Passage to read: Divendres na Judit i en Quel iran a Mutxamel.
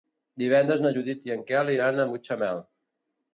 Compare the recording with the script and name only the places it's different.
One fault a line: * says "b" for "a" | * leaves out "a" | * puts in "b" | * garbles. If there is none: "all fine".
all fine